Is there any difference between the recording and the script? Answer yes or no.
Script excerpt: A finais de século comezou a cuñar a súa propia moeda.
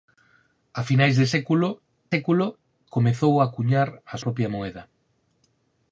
yes